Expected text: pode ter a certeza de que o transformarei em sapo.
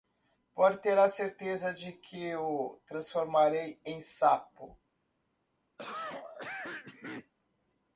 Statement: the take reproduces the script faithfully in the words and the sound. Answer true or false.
false